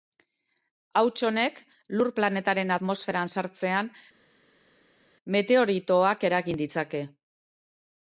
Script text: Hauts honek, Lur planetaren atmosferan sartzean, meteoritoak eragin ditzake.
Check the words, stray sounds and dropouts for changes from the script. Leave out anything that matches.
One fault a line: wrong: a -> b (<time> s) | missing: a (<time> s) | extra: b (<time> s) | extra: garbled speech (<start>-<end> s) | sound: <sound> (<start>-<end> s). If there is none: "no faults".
no faults